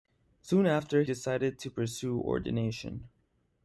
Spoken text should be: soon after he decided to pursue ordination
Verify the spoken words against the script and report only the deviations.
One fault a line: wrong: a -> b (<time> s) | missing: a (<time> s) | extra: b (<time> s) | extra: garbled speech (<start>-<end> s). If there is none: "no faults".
missing: he (1.0 s)